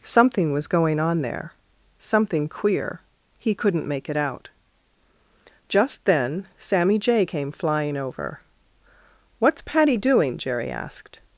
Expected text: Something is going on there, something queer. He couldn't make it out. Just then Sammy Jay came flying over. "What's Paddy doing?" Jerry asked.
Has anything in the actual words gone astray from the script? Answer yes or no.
yes